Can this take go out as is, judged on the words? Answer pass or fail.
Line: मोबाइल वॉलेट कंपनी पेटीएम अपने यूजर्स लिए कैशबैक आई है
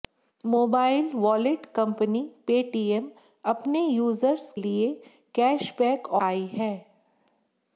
pass